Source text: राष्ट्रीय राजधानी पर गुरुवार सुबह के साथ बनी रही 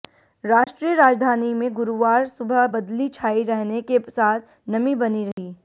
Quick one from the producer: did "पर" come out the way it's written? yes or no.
no